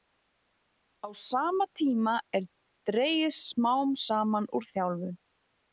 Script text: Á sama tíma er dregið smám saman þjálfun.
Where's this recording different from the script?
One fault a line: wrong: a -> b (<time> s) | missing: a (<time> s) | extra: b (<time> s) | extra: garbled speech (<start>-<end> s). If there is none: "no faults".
extra: úr (4.6 s)